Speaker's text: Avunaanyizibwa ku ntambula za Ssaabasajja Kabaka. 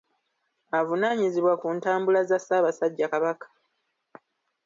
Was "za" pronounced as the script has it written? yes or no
yes